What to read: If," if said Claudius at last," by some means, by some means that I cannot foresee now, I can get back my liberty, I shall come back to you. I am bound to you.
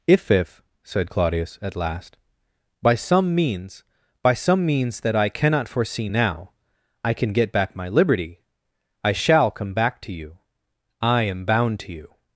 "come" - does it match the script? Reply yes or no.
yes